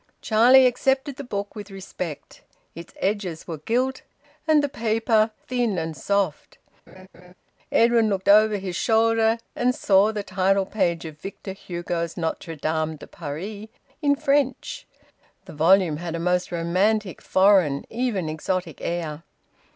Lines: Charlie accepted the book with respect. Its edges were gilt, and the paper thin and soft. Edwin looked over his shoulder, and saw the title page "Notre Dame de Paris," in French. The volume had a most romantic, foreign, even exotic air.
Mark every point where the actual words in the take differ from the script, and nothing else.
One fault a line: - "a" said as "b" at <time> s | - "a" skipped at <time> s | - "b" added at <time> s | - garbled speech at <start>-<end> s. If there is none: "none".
- "of Victor Hugo's" added at 11.1 s